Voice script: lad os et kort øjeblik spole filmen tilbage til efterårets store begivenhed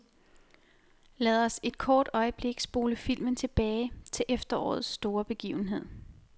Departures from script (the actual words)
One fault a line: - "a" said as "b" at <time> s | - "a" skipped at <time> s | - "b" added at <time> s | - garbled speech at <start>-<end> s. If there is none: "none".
none